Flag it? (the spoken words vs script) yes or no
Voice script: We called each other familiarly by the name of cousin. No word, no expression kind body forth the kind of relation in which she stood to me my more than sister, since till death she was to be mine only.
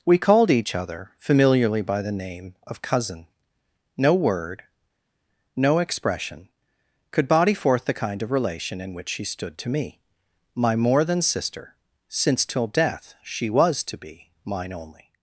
yes